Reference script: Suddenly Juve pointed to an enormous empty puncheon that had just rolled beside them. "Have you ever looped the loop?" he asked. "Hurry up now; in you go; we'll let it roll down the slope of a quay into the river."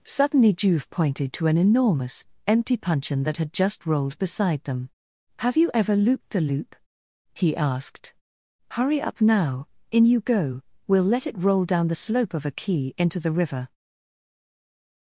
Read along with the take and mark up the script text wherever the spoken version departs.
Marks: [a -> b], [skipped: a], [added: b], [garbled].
Suddenly Juve pointed to an enormous empty puncheon that had just rolled beside them. "Have you ever looped the loop?" he asked. "Hurry up now; in you go; we'll let it roll down the slope of a quay into the river."